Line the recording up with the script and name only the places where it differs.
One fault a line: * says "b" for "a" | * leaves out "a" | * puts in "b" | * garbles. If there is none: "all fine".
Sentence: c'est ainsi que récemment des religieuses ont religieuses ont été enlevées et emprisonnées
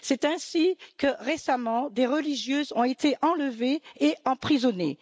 * leaves out "religieuses ont"